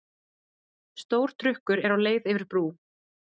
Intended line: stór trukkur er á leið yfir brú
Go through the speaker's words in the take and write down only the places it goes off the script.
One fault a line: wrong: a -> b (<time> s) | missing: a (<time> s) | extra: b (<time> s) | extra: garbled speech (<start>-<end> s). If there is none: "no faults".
no faults